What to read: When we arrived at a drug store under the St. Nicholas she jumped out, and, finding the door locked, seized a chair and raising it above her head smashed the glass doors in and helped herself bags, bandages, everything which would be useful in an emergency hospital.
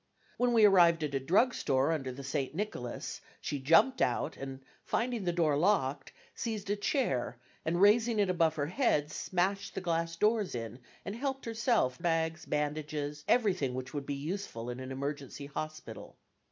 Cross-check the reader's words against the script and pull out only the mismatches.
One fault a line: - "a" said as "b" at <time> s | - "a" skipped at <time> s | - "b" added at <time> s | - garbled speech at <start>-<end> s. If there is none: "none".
none